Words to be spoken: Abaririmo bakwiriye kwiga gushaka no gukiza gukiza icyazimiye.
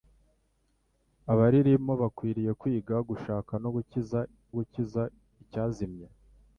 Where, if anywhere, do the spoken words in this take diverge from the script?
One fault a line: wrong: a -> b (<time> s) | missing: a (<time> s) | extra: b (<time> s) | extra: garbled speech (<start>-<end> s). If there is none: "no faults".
no faults